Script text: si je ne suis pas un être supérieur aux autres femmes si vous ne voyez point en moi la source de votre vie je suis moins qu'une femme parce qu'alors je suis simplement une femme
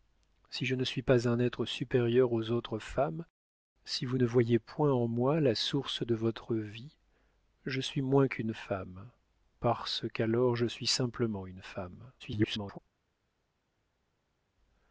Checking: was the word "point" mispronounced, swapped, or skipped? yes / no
no